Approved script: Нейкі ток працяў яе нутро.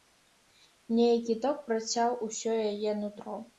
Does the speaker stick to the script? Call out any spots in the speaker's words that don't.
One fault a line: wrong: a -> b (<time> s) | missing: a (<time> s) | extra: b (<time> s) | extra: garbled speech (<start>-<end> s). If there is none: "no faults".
extra: усё (2.3 s)